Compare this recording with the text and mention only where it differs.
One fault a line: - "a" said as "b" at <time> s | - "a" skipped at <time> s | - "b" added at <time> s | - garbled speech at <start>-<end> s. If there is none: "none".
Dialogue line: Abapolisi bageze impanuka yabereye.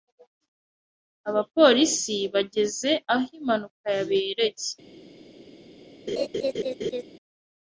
- "aho" added at 3.1 s